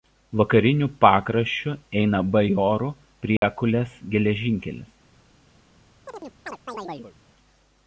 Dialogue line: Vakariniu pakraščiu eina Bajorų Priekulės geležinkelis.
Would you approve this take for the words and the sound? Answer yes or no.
no